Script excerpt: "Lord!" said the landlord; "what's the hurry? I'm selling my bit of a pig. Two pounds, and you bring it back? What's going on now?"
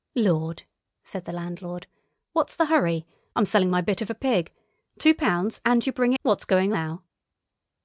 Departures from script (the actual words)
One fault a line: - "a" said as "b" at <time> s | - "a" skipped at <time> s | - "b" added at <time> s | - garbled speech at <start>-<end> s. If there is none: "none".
- "it back" skipped at 6.1 s
- "on" skipped at 6.7 s